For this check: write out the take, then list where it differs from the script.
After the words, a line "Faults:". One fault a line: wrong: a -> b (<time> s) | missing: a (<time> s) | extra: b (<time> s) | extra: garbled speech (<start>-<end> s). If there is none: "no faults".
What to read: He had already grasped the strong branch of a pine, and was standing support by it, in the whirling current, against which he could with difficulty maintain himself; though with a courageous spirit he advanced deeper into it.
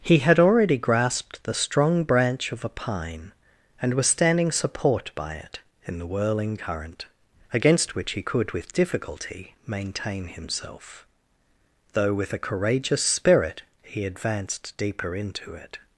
He had already grasped the strong branch of a pine, and was standing support by it, in the whirling current, against which he could with difficulty maintain himself; though with a courageous spirit he advanced deeper into it.
Faults:
no faults